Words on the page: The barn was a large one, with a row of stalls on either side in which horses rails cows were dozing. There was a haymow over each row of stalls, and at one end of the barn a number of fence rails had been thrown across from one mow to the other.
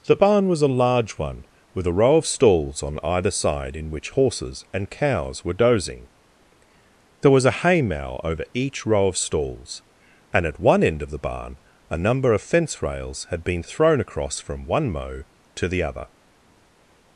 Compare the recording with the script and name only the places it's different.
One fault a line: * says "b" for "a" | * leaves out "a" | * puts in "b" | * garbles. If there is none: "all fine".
* says "and" for "rails"